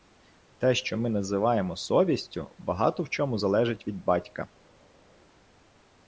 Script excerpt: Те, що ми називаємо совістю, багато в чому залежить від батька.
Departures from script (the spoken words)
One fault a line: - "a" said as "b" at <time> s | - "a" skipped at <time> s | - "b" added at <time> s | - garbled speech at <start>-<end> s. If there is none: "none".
none